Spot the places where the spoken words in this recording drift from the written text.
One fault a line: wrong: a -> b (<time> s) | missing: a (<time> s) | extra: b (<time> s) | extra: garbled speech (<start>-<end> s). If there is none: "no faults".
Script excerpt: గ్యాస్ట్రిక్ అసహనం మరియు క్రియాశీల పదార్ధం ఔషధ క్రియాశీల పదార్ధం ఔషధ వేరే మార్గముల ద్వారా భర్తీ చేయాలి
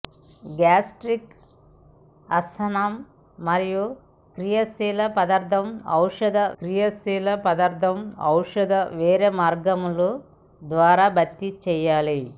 no faults